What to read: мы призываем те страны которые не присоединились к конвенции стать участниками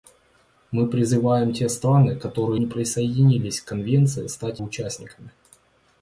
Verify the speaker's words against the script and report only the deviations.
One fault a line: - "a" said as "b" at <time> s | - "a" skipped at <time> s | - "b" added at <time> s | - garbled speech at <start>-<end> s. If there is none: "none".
none